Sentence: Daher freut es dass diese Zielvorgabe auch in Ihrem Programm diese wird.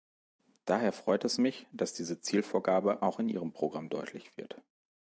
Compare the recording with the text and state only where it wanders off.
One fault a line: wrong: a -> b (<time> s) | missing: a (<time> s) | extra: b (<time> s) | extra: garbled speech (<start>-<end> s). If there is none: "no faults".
extra: mich (1.4 s)
wrong: diese -> deutlich (3.9 s)